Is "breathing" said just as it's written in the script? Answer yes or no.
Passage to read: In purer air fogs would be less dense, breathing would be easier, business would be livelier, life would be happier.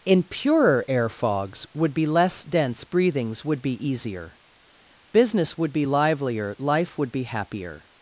no